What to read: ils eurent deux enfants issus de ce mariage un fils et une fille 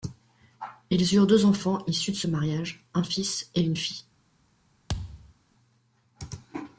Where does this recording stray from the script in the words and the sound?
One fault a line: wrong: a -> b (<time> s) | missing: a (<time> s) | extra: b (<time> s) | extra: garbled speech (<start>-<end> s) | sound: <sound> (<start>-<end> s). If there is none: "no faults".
sound: thud (4.9-5.3 s)